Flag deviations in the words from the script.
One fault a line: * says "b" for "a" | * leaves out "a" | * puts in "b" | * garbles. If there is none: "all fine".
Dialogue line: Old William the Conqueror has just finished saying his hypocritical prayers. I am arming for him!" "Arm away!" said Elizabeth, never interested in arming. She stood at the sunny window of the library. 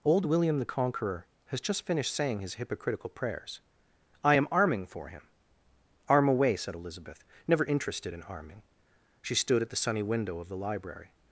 all fine